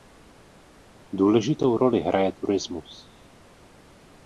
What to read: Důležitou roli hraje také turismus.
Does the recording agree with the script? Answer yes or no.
no